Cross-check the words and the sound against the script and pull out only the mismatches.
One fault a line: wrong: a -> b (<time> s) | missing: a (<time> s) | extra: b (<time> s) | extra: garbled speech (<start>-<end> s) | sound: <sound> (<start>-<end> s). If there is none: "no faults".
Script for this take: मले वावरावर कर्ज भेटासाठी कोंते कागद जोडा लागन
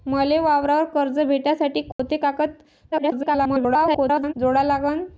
sound: dropout (1.9-2.0 s)
extra: garbled speech (2.9-4.3 s)